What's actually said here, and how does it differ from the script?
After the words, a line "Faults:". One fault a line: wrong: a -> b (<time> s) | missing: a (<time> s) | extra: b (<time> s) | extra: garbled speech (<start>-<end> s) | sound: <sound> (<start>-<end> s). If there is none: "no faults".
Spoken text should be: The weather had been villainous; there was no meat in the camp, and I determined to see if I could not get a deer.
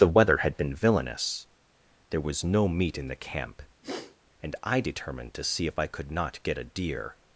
The weather had been villainous; there was no meat in the camp, and I determined to see if I could not get a deer.
Faults:
sound: sniff (3.8-4.2 s)